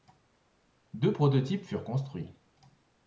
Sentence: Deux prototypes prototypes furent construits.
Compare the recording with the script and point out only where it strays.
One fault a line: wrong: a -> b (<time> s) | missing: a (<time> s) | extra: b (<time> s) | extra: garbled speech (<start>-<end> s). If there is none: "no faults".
missing: prototypes (1.6 s)